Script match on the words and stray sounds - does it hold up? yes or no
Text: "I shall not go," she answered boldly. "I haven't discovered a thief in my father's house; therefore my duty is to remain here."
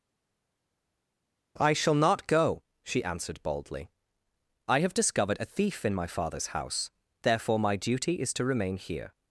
no